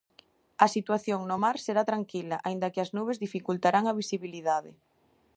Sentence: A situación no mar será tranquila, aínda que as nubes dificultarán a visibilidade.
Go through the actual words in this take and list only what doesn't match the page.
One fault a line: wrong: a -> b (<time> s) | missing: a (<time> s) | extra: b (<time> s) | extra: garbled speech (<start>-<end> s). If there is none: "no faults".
no faults